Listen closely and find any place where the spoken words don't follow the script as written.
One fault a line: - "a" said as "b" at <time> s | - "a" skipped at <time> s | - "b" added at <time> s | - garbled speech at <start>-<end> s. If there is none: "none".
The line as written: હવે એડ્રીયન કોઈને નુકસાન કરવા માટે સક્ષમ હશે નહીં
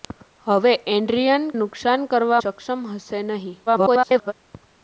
- "કોઈને" skipped at 1.5 s
- "માટે" skipped at 2.4 s
- garbled speech at 3.7-4.3 s